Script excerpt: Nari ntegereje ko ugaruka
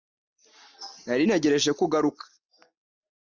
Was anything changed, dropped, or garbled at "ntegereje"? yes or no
no